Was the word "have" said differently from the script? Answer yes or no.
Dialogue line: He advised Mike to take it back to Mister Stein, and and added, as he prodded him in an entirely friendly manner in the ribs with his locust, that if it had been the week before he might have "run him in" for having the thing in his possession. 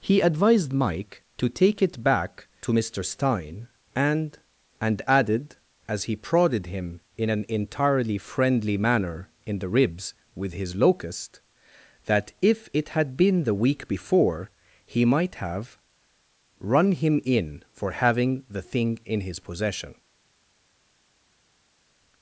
no